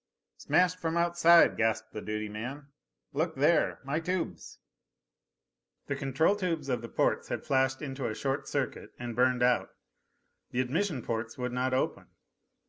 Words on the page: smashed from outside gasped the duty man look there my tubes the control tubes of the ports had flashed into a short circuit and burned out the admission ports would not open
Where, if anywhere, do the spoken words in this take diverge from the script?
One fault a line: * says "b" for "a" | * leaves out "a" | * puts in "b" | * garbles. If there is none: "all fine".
all fine